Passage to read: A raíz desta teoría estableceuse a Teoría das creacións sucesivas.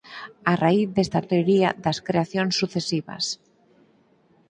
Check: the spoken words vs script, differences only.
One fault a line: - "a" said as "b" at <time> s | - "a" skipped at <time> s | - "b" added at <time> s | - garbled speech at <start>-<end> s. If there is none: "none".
- "teoría estableceuse" skipped at 1.2 s